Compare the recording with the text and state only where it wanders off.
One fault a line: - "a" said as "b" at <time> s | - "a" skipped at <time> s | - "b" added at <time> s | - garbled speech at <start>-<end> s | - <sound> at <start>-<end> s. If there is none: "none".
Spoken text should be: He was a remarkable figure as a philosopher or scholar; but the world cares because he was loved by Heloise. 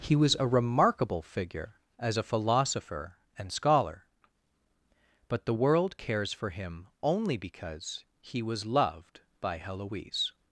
- "or" said as "and" at 3.4 s
- "for him only" added at 6.3 s